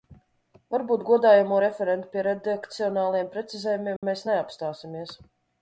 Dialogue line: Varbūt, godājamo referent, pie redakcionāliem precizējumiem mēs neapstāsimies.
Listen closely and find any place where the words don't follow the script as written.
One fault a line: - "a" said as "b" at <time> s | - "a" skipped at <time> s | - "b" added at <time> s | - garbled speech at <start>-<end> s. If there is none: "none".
none